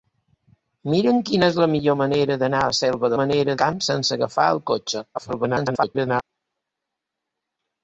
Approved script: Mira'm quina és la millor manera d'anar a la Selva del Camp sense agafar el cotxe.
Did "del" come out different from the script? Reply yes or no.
yes